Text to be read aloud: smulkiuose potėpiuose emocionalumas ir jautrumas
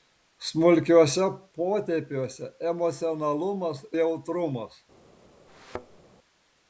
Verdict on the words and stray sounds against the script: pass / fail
fail